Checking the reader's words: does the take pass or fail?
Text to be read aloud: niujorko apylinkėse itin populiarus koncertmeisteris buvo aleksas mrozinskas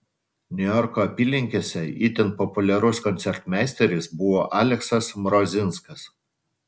pass